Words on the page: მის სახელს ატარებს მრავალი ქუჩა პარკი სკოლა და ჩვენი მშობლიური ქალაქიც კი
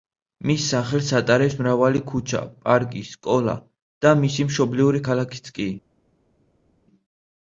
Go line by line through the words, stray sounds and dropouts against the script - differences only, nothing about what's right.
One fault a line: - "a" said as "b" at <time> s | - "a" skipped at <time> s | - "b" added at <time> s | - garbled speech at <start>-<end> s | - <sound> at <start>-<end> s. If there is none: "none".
- "ჩვენი" said as "მისი" at 4.2 s